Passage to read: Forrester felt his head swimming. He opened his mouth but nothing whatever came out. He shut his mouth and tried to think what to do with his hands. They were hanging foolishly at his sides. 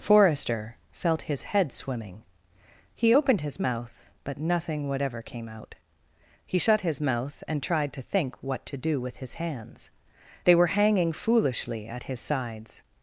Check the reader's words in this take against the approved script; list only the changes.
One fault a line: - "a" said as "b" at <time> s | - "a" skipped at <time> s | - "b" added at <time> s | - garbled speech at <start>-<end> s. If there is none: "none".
none